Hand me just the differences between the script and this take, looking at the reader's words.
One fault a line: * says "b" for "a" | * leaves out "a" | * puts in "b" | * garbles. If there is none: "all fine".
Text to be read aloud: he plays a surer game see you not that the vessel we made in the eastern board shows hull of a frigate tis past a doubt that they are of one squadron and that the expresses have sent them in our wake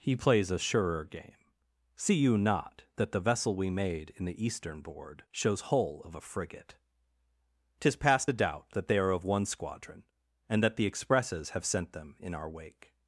all fine